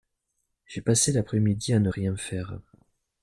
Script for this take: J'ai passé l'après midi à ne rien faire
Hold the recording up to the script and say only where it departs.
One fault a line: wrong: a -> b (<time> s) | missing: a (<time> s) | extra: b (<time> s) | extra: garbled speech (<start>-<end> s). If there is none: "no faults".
no faults